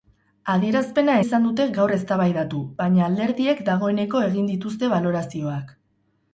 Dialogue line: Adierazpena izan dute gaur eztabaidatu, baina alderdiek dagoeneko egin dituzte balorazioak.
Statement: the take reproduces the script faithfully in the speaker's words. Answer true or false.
true